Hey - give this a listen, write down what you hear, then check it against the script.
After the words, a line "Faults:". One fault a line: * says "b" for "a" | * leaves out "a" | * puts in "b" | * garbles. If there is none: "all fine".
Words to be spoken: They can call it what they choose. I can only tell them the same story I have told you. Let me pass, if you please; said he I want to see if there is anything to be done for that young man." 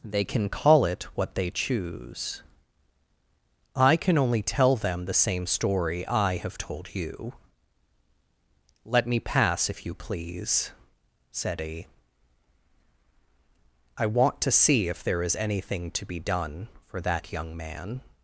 They can call it what they choose. I can only tell them the same story I have told you. Let me pass, if you please; said he I want to see if there is anything to be done for that young man."
Faults:
all fine